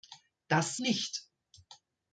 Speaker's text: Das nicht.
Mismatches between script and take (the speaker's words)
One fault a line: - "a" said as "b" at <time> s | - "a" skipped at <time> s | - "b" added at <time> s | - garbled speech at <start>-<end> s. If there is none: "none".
none